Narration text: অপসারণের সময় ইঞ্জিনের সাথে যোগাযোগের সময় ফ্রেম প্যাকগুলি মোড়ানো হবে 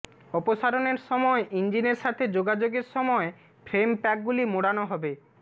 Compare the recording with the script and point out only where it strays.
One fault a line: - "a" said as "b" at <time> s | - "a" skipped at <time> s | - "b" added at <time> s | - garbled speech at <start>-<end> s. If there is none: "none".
none